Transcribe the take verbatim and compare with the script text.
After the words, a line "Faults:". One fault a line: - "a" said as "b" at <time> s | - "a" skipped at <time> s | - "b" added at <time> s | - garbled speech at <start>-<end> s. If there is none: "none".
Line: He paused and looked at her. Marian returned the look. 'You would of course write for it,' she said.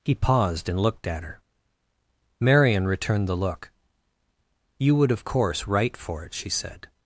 He paused and looked at her. Marian returned the look. 'You would of course write for it,' she said.
Faults:
none